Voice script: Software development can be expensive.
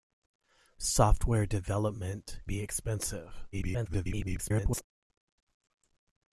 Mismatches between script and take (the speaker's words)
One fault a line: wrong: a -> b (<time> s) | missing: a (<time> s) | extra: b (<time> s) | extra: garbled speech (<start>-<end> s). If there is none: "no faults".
missing: can (2.4 s)
extra: garbled speech (3.5-4.8 s)